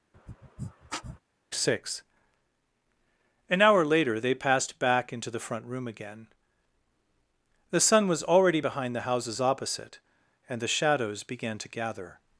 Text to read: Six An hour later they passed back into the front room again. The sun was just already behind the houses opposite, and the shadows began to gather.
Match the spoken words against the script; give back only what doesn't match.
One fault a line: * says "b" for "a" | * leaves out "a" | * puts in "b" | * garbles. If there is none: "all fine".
* leaves out "just"